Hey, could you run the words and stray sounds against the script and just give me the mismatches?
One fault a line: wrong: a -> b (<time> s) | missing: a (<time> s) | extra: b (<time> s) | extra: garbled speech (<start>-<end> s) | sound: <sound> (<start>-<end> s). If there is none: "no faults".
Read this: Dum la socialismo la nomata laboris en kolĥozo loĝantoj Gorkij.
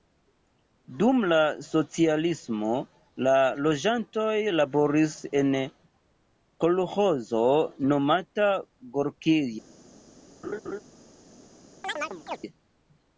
wrong: nomata -> loĝantoj (3.6 s)
wrong: loĝantoj -> nomata (7.9 s)
sound: laugh (10.4-10.8 s)
sound: chirp (11.8-12.4 s)